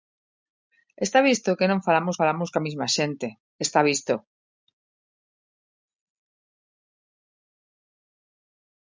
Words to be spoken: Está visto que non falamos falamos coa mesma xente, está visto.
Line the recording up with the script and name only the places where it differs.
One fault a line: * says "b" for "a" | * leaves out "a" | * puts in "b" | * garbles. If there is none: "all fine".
all fine